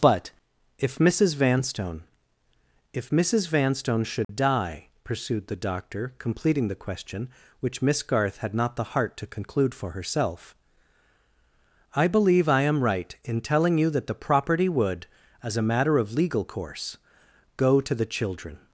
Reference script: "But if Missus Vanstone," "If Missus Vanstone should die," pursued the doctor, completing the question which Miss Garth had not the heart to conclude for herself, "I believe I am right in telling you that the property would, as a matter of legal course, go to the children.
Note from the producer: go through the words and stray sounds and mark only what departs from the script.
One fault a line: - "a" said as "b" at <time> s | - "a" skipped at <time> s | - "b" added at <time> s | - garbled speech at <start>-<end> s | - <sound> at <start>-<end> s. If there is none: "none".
- dropout at 4.2-4.3 s